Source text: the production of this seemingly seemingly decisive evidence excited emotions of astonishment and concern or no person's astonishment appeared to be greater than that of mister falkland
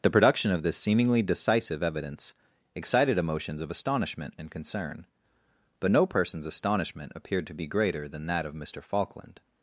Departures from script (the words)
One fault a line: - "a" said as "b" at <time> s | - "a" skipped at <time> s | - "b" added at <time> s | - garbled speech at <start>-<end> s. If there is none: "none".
- "seemingly" skipped at 1.2 s
- "or" said as "but" at 5.8 s